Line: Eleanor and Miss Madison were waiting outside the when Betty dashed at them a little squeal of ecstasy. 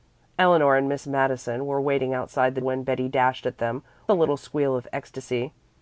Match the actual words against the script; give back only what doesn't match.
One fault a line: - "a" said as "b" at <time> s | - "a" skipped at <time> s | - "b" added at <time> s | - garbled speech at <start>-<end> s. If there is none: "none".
none